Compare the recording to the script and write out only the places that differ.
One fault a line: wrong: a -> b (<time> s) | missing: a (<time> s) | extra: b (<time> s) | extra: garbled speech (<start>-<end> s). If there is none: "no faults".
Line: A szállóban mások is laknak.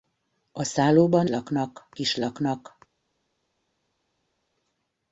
wrong: mások -> laknak (1.3 s)